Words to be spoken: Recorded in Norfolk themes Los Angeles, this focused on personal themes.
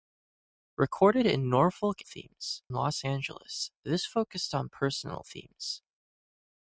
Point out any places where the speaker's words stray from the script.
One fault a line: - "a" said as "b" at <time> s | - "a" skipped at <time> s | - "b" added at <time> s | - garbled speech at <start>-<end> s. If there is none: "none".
none